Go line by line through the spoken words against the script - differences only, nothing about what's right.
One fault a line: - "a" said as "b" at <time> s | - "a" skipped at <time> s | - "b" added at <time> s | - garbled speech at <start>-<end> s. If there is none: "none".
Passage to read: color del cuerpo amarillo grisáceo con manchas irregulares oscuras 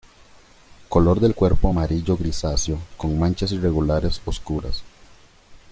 none